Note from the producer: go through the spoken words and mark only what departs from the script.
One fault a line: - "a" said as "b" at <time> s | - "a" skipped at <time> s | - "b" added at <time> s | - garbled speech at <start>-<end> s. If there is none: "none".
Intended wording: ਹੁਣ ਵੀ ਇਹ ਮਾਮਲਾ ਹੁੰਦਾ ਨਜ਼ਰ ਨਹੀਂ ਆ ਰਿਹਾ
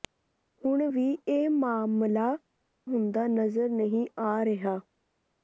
none